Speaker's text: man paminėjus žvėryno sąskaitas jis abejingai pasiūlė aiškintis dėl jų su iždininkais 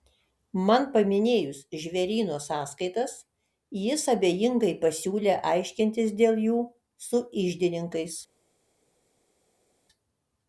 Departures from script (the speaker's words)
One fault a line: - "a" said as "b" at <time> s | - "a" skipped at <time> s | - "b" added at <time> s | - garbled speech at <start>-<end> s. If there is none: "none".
none